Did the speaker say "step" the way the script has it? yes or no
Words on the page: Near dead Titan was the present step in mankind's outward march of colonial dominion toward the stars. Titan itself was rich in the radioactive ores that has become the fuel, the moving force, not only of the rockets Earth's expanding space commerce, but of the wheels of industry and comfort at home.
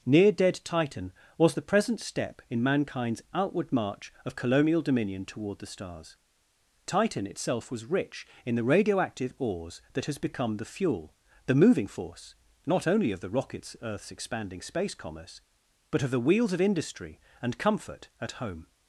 yes